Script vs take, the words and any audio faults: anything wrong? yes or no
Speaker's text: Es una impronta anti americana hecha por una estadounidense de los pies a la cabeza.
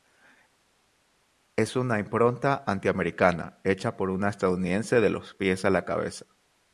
no